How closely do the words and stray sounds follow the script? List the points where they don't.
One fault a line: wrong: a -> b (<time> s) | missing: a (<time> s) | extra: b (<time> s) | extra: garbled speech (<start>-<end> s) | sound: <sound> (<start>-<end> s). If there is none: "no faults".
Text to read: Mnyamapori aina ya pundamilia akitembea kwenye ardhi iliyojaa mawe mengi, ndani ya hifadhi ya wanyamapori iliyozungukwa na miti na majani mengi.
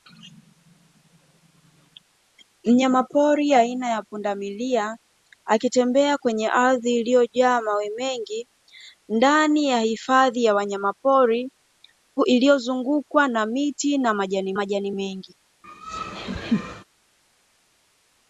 extra: majani (14.5 s)
sound: laugh (15.6-16.8 s)